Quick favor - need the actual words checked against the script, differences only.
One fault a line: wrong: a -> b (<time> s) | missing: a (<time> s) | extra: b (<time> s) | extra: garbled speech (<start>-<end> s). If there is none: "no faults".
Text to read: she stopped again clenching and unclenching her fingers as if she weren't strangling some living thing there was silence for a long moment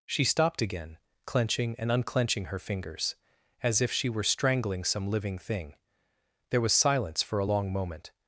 wrong: weren't -> were (4.1 s)